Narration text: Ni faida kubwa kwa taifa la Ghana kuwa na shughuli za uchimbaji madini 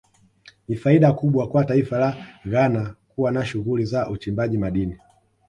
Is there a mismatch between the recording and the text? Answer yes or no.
no